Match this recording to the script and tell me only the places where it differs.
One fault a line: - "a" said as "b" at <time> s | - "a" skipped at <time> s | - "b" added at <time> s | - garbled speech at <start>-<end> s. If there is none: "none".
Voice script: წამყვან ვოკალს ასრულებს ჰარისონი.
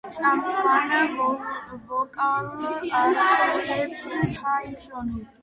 none